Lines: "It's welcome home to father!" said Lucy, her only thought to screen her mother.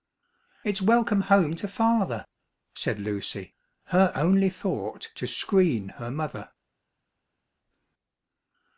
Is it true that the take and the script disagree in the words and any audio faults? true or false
false